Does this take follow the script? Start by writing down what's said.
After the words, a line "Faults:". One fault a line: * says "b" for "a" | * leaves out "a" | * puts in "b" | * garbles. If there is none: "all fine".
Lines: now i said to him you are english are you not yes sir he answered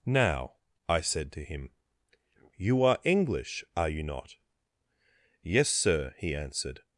now i said to him you are english are you not yes sir he answered
Faults:
all fine